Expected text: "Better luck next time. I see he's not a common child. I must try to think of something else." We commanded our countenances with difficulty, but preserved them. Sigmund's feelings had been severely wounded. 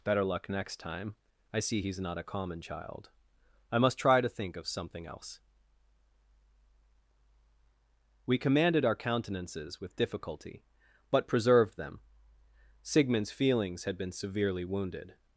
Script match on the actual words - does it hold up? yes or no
yes